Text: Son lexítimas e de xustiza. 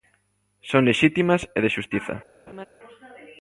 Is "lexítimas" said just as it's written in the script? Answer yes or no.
yes